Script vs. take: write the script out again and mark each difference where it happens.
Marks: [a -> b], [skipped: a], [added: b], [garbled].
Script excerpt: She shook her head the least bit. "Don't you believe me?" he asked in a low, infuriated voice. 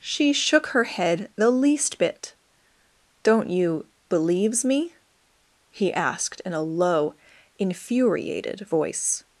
She shook her head the least bit. "Don't you [believe -> believes] me?" he asked in a low, infuriated voice.